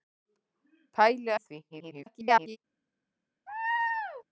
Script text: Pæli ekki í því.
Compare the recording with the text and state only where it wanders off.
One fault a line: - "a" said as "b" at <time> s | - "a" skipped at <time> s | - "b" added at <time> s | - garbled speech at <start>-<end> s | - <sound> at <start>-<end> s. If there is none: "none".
- "ekki" skipped at 1.3 s
- garbled speech at 1.7-2.6 s
- laugh at 3.5-4.2 s